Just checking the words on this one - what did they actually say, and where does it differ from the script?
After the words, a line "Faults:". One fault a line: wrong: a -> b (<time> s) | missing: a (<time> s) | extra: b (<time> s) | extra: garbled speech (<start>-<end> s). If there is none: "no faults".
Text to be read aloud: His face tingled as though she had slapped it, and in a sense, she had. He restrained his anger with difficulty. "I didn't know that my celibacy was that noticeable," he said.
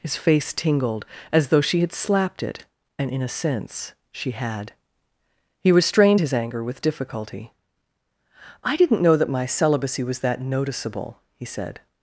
His face tingled as though she had slapped it, and in a sense, she had. He restrained his anger with difficulty. "I didn't know that my celibacy was that noticeable," he said.
Faults:
no faults